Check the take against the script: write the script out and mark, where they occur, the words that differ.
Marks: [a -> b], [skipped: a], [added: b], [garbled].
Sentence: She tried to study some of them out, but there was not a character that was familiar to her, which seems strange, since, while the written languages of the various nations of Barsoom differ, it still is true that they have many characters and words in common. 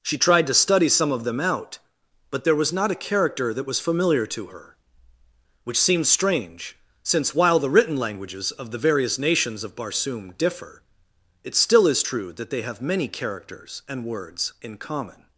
She tried to study some of them out, but there was not a character that was familiar to her, which seems strange, since, while the written languages of the various nations of Barsoom differ, it still is true that they have many characters and words in common.